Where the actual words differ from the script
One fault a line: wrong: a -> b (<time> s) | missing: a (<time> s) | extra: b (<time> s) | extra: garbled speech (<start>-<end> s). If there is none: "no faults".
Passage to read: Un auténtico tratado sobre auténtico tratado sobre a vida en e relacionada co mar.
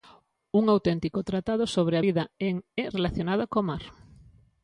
missing: auténtico tratado sobre (1.9 s)